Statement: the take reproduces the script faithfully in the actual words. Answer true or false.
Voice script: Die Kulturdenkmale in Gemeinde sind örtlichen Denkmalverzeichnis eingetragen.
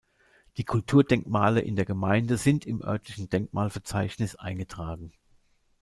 false